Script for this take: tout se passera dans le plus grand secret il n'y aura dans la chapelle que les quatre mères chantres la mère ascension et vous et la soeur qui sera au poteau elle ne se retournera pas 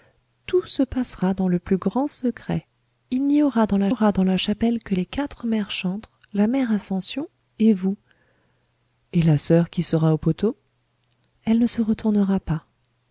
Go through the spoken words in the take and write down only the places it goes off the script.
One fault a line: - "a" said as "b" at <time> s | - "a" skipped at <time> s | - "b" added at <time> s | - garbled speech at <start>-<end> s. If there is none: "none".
- "aura dans la" added at 3.9 s